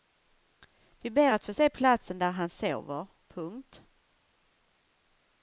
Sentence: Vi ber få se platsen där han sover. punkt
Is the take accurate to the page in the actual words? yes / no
no